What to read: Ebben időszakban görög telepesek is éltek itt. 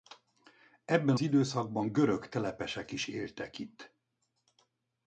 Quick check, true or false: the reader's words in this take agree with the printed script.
true